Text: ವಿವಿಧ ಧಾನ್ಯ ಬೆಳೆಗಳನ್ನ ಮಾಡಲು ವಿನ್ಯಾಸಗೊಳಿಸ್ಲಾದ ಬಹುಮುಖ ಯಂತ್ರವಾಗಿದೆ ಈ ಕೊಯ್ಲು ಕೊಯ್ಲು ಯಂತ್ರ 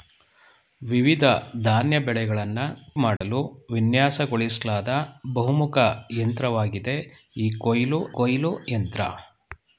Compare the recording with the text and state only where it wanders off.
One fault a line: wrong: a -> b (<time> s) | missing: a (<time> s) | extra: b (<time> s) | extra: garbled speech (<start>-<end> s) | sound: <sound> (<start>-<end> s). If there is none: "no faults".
sound: dropout (3.2-3.2 s)